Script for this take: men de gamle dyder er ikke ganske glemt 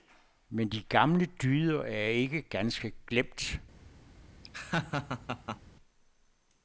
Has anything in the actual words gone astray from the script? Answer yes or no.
no